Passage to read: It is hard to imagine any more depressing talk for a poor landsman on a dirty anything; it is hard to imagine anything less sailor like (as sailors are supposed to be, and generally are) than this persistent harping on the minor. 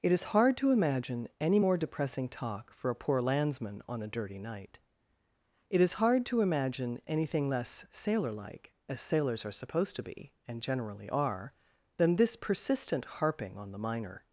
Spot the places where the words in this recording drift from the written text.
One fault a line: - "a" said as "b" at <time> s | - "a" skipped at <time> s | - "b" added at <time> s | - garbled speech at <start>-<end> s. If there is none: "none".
- "anything" said as "night" at 4.4 s